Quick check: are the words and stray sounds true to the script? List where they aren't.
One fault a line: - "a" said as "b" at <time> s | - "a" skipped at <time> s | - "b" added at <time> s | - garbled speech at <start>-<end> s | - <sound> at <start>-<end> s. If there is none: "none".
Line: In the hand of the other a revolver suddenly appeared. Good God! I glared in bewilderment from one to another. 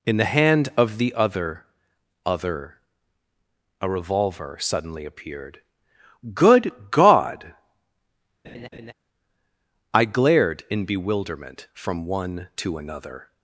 - "other" added at 2.2 s
- laugh at 8.4-8.9 s